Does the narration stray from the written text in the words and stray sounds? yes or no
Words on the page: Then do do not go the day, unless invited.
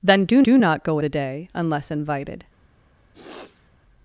yes